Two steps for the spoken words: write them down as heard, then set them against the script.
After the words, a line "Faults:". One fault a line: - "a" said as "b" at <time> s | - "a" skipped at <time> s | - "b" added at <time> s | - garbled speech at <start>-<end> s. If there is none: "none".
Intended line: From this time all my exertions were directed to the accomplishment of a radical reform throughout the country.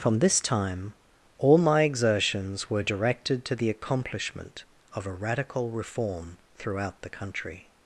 From this time all my exertions were directed to the accomplishment of a radical reform throughout the country.
Faults:
none